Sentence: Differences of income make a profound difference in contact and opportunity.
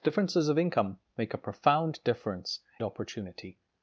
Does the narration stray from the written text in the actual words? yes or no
yes